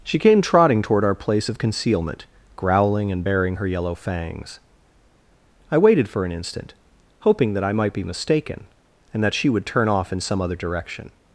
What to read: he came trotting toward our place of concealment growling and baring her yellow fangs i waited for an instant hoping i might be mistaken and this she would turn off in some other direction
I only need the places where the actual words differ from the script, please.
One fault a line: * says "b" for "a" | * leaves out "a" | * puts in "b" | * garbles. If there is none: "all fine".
* says "she" for "he"
* puts in "that"
* says "that" for "this"